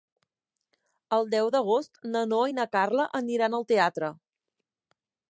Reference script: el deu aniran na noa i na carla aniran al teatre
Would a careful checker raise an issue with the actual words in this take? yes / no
yes